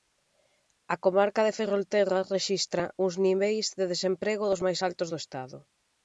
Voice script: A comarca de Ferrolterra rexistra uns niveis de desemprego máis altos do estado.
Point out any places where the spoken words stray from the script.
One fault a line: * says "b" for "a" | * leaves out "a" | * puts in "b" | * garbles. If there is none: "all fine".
* puts in "dos"